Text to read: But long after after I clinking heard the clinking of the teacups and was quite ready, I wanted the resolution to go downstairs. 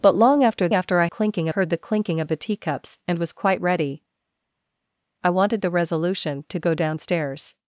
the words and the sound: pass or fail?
pass